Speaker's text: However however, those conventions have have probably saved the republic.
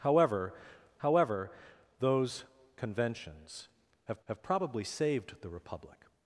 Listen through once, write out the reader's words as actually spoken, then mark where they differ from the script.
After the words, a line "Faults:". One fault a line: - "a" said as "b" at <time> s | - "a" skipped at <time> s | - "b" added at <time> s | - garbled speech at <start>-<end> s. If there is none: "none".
However however, those conventions have have probably saved the republic.
Faults:
none